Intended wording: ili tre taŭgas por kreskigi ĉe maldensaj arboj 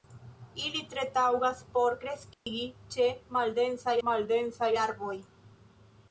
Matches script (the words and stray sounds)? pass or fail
fail